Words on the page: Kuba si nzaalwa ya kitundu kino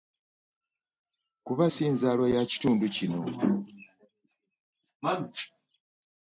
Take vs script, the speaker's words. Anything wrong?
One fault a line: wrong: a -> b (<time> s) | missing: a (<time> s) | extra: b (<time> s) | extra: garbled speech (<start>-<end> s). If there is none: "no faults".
no faults